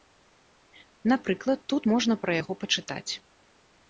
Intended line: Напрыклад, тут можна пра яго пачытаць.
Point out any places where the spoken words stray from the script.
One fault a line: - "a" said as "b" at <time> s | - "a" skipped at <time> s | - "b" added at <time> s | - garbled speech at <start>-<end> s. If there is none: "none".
none